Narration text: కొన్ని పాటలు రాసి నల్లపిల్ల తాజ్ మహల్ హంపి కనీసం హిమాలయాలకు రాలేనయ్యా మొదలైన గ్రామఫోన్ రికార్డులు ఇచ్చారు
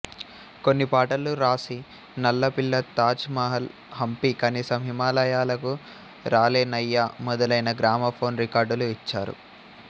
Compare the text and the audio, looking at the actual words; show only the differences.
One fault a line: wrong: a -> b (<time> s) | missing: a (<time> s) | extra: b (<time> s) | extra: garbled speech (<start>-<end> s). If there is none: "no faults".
no faults